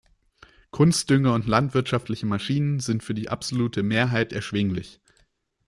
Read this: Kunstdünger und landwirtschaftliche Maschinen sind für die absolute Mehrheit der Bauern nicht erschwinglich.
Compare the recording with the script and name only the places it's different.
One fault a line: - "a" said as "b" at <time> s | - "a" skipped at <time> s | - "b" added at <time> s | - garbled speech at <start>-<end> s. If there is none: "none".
- "der Bauern nicht" skipped at 4.3 s